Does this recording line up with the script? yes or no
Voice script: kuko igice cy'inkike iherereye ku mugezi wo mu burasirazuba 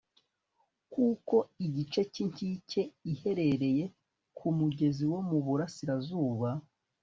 yes